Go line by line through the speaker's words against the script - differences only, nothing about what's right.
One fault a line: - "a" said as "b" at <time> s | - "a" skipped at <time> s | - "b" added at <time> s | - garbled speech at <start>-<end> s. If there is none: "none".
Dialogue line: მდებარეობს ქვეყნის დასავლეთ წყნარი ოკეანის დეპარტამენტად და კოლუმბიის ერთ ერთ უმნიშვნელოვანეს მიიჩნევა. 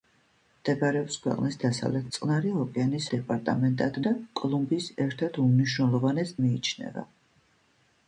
none